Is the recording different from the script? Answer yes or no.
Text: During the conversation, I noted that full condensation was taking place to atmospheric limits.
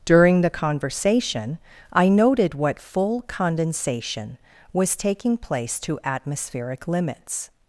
yes